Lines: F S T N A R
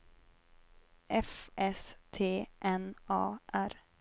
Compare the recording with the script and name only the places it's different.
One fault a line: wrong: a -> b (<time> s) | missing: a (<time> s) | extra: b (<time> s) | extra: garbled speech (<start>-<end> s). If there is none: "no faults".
no faults